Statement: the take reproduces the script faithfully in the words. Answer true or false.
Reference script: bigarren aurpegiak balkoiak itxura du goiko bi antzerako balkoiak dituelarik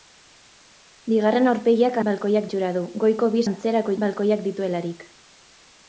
true